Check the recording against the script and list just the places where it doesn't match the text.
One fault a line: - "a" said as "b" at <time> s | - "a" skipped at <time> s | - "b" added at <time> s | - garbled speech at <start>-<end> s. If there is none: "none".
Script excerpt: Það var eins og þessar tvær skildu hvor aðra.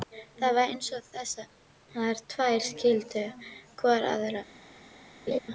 none